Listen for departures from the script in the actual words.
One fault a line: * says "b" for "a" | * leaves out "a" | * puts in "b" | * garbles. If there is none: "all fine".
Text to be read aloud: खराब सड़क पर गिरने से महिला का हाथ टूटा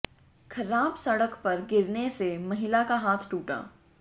all fine